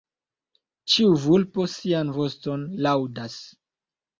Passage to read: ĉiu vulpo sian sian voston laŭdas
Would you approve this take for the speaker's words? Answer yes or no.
no